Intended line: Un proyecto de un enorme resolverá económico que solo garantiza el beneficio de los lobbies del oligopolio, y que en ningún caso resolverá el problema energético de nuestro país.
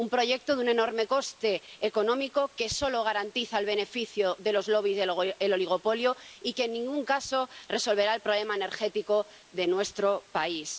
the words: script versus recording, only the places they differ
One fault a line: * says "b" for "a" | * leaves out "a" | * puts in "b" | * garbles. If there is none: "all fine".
* says "coste" for "resolverá"